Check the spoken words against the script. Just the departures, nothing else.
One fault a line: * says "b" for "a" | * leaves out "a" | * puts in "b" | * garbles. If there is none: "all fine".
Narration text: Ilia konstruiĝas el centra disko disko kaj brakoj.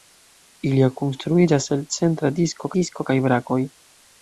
all fine